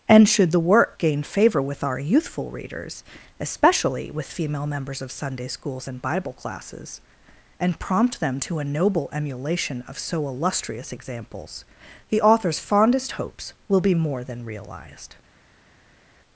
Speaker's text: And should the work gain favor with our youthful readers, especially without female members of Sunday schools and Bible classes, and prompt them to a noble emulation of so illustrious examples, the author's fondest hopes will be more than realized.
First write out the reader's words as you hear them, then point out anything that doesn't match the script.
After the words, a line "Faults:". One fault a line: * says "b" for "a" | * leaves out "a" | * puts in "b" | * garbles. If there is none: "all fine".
And should the work gain favor with our youthful readers, especially with female members of Sunday schools and Bible classes, and prompt them to a noble emulation of so illustrious examples, the author's fondest hopes will be more than realized.
Faults:
* says "with" for "without"